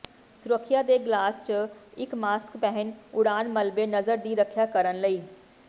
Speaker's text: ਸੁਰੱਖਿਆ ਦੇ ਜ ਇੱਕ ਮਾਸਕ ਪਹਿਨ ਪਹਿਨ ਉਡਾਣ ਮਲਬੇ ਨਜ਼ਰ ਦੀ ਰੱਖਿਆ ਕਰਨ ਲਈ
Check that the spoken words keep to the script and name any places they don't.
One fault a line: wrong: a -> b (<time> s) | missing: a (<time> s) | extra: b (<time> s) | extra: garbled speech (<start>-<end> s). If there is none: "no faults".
extra: ਗਲਾਸ (1.0 s)
missing: ਪਹਿਨ (2.9 s)